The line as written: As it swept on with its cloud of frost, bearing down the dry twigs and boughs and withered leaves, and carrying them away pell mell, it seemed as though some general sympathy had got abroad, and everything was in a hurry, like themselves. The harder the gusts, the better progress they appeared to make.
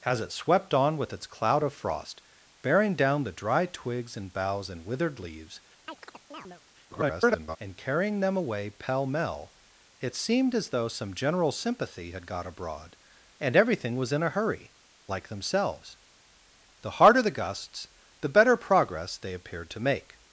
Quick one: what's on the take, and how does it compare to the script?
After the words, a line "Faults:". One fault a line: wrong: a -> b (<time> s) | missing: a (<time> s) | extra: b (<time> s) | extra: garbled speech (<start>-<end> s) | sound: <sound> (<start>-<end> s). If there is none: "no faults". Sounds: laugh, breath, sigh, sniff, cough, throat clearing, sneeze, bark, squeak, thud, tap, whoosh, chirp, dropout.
As it swept on with its cloud of frost, bearing down the dry twigs and boughs and withered leaves, [garbled] and carrying them away pell mell, it seemed as though some general sympathy had got abroad, and everything was in a hurry, like themselves. The harder the gusts, the better progress they appeared to make.
Faults:
sound: chirp (5.9-6.6 s)
extra: garbled speech (6.9-7.6 s)